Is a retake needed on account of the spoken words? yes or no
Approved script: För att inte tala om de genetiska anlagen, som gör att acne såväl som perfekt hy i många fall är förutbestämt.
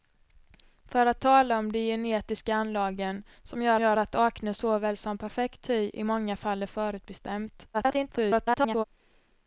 yes